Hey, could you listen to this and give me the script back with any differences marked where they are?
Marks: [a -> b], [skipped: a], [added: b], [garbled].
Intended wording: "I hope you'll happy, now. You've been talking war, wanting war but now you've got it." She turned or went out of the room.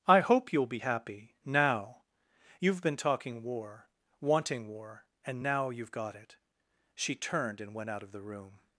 "I hope you'll [added: be] happy, now. You've been talking war, wanting war [but -> and] now you've got it." She turned [or -> and] went out of the room.